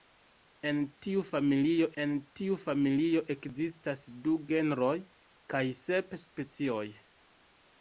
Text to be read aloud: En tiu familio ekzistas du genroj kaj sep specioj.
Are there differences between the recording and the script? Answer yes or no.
yes